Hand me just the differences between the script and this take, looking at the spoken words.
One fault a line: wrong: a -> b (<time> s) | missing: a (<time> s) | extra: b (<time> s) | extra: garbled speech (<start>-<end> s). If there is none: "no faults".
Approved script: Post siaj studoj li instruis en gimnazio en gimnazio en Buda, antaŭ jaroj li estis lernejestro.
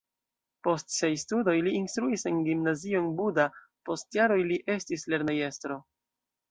missing: gimnazio en (3.1 s)
wrong: antaŭ -> post (3.9 s)